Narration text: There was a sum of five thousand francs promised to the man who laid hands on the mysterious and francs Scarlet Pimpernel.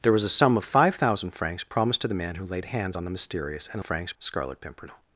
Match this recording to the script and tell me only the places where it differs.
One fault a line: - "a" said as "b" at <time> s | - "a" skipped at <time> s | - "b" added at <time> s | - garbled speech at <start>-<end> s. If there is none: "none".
none